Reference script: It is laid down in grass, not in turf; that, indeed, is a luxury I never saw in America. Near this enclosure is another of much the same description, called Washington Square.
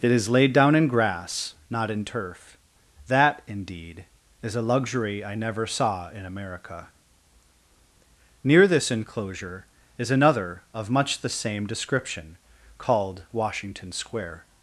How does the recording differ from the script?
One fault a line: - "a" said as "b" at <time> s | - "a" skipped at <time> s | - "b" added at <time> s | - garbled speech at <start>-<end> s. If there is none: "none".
none